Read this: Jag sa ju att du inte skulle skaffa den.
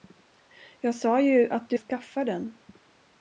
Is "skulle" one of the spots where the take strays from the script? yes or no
yes